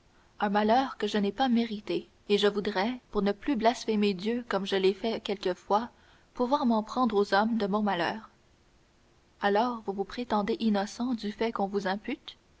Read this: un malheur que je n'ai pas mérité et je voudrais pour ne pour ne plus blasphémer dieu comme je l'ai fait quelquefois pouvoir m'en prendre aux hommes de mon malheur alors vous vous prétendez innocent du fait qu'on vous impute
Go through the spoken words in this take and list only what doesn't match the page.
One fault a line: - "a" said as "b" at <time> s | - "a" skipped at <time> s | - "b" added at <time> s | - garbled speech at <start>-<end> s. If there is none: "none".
- "pour ne" skipped at 3.3 s